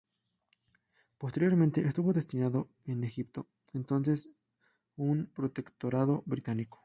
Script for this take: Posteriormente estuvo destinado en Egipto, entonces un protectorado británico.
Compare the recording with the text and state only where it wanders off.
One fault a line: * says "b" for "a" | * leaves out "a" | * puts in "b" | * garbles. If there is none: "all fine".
all fine